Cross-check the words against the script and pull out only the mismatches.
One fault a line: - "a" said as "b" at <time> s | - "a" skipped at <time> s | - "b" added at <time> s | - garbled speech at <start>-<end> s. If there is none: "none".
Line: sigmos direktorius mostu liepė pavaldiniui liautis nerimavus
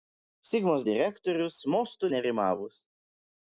- "liepė pavaldiniui liautis" skipped at 2.1 s